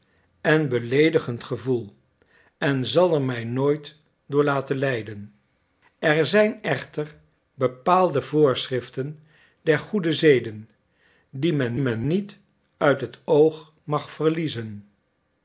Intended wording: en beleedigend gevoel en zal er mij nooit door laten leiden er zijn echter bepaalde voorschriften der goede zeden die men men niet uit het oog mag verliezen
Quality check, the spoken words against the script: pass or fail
pass